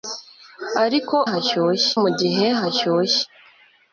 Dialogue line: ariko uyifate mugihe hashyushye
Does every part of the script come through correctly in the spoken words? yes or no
no